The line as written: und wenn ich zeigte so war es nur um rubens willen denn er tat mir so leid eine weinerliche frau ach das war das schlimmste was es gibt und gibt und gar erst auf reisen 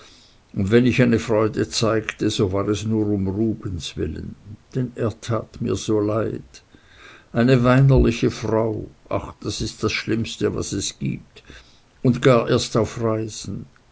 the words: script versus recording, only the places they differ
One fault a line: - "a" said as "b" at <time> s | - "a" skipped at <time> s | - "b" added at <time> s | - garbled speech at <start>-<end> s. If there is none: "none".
- "eine freude" added at 1.0 s
- "war" said as "ist" at 9.6 s
- "gibt und" skipped at 12.2 s